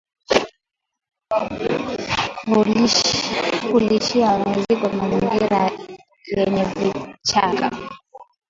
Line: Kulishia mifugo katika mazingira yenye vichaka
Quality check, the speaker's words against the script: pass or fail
fail